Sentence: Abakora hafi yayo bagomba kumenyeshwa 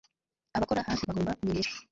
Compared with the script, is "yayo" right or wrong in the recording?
wrong